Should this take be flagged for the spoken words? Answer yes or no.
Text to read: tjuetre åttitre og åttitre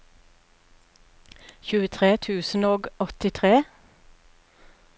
yes